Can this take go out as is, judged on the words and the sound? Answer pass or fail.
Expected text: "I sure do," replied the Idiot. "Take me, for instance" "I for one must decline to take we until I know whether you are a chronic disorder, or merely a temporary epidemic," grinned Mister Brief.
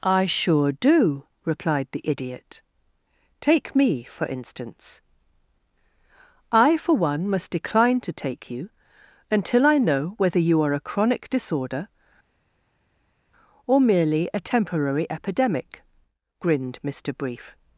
fail